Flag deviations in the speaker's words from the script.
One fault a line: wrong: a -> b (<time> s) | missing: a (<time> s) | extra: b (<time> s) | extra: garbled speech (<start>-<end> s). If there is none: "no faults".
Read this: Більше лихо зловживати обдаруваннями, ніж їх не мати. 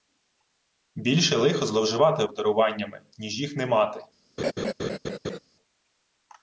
no faults